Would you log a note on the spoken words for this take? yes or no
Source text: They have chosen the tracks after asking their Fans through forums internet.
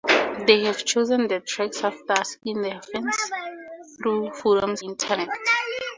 no